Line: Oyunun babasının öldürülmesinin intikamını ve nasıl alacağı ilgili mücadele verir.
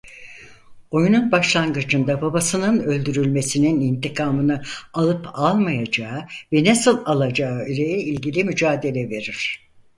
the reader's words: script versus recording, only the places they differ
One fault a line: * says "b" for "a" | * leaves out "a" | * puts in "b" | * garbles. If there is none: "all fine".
* puts in "başlangıcında"
* puts in "alıp almayacağı"
* puts in "ile"